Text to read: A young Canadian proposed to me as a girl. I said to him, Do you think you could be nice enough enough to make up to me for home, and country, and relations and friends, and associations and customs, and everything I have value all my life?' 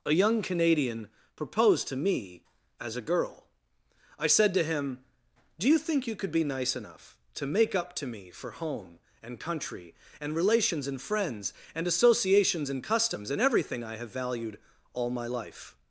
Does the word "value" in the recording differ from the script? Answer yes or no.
yes